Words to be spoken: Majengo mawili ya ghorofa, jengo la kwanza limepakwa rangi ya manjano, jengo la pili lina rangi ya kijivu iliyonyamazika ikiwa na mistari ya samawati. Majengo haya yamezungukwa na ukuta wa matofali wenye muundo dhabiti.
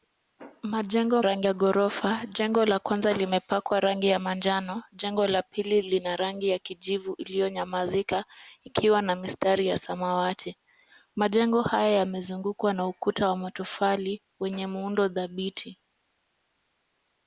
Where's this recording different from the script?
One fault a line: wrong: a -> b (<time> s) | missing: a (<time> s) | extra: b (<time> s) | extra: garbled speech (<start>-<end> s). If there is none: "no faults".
wrong: mawili -> rangi (1.2 s)